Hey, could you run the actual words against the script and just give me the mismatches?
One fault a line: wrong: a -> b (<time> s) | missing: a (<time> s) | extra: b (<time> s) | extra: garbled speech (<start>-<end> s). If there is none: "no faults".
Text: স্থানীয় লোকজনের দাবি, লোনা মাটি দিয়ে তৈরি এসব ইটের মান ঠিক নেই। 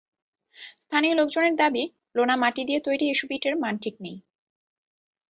no faults